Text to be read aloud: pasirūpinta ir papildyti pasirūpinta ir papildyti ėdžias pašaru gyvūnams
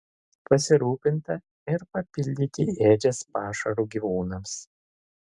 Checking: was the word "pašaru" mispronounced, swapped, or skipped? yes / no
no